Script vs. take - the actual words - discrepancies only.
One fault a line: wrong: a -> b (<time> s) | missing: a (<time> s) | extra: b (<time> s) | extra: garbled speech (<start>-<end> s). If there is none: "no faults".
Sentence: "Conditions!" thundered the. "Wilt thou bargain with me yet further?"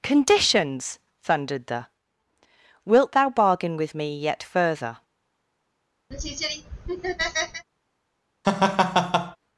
no faults